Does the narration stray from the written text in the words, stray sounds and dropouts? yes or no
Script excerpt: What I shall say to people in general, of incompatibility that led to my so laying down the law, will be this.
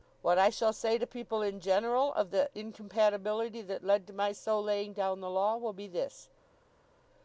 yes